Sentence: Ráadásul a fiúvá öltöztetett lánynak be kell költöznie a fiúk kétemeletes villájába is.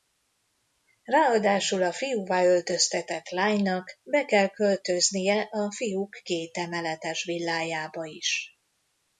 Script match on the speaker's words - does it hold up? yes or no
yes